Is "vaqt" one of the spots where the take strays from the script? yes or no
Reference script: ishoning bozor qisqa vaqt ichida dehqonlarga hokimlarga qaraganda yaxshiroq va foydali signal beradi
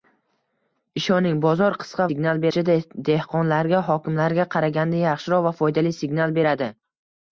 yes